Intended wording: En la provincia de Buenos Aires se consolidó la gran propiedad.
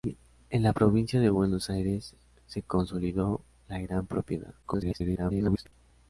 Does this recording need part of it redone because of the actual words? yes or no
yes